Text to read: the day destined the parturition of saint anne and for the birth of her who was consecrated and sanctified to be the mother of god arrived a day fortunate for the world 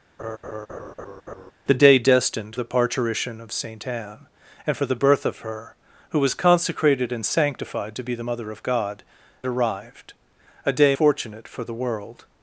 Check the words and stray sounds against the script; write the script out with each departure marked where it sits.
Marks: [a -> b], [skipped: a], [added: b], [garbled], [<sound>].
[laugh] the day destined the parturition of saint anne and for the birth of her who was consecrated and sanctified to be the mother of god arrived a day fortunate for the world